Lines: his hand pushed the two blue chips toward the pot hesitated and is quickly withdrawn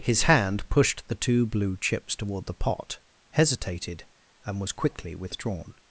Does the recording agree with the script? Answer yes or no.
no